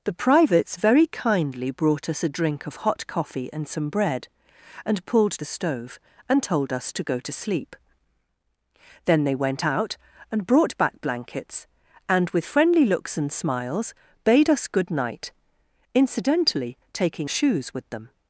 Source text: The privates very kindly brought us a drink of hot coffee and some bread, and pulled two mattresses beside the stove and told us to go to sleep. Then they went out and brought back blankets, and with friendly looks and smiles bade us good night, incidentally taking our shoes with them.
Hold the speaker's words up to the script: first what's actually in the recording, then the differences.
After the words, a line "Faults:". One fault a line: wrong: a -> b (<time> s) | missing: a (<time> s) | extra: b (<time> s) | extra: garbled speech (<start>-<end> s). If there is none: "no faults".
The privates very kindly brought us a drink of hot coffee and some bread, and pulled the stove and told us to go to sleep. Then they went out and brought back blankets, and with friendly looks and smiles bade us good night, incidentally taking shoes with them.
Faults:
missing: two mattresses beside (5.4 s)
missing: our (17.3 s)